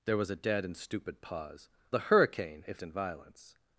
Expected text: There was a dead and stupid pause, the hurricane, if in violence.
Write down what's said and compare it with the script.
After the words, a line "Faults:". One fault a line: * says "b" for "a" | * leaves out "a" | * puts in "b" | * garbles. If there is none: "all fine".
There was a dead and stupid pause, the hurricane, if in violence.
Faults:
all fine